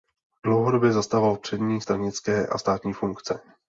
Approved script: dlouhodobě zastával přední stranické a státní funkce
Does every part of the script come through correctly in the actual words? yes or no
yes